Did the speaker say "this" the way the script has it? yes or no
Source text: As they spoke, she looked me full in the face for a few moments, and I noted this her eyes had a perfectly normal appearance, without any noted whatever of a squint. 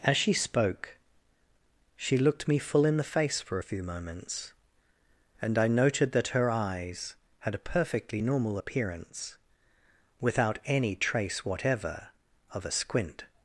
no